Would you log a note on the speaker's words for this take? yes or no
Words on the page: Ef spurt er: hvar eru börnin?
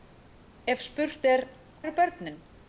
yes